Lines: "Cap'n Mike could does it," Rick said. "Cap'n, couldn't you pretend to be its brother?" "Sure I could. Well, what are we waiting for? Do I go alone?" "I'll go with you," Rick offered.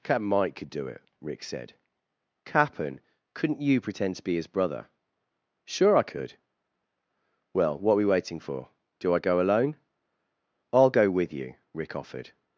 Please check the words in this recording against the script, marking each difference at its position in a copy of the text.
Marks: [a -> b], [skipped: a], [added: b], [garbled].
"Cap'n Mike could [does -> do] it," Rick said. "Cap'n, couldn't you pretend to be [its -> his] brother?" "Sure I could. Well, what are we waiting for? Do I go alone?" "I'll go with you," Rick offered.